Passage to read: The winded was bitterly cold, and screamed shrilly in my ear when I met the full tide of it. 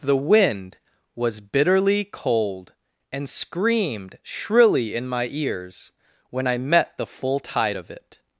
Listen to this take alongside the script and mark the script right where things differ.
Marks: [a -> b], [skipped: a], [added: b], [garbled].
The [winded -> wind] was bitterly cold, and screamed shrilly in my [ear -> ears] when I met the full tide of it.